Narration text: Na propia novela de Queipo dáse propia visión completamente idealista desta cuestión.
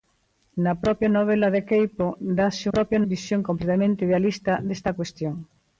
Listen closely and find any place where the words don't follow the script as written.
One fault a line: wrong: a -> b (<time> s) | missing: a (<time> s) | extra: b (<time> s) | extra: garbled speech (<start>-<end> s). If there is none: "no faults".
no faults